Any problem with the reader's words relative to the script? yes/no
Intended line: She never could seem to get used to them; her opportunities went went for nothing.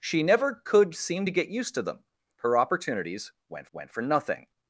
no